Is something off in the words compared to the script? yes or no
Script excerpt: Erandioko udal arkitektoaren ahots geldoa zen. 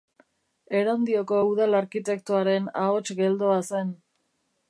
no